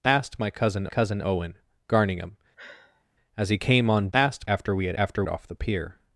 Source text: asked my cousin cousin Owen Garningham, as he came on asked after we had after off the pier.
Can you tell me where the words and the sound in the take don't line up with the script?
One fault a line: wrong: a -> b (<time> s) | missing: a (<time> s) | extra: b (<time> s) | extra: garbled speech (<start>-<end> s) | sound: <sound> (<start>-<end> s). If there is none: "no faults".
sound: sigh (2.6-3.0 s)